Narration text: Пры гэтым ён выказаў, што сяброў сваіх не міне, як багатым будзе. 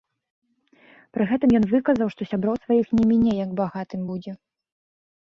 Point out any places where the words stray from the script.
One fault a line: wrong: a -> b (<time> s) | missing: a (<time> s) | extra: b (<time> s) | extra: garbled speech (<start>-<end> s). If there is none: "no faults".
no faults